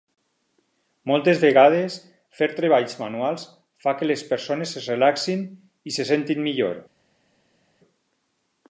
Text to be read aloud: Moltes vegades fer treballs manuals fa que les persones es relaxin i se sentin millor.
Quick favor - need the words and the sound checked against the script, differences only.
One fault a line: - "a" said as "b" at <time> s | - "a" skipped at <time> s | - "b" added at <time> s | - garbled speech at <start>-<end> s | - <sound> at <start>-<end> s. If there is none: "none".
none